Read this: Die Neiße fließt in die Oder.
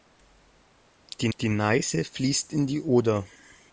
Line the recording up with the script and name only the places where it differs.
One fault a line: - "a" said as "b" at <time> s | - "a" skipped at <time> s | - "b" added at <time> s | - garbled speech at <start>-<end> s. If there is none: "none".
- "die" added at 1.4 s